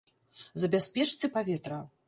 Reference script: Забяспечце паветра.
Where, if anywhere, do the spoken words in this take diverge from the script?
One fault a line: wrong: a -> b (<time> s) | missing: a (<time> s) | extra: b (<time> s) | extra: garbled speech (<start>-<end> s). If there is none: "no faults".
no faults